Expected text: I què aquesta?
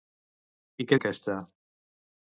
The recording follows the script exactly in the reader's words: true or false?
true